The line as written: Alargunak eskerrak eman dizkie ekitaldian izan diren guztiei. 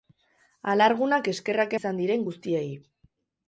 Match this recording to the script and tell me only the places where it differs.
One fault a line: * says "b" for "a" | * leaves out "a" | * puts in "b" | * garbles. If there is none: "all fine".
* leaves out "eman dizkie ekitaldian"